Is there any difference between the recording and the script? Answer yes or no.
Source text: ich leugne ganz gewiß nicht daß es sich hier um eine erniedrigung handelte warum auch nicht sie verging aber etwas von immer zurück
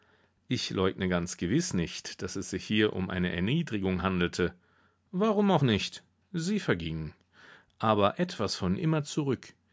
no